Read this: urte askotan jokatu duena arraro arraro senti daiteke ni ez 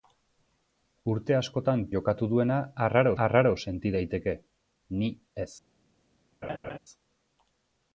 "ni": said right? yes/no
yes